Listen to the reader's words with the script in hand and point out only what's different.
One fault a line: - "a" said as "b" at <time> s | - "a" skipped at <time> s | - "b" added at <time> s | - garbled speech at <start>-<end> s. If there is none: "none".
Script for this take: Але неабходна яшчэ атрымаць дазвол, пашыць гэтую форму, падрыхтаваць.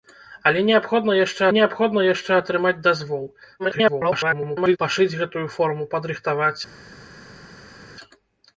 - "неабходна яшчэ" added at 1.6 s
- garbled speech at 3.6-4.8 s